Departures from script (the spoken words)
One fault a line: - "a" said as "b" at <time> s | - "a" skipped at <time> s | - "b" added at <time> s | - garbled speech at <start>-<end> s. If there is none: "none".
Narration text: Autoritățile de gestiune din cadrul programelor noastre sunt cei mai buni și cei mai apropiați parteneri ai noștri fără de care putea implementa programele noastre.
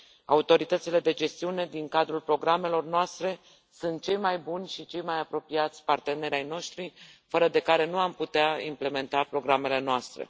- "nu am" added at 7.8 s